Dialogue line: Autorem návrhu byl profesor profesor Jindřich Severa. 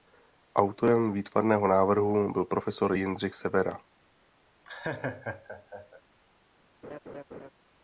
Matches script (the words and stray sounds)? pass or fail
fail